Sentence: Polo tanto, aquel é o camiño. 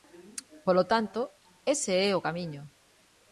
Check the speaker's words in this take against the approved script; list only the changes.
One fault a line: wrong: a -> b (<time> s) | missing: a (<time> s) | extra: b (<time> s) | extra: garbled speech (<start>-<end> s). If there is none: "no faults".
wrong: aquel -> ese (1.7 s)